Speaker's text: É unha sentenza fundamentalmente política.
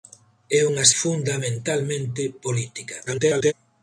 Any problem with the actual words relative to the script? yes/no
yes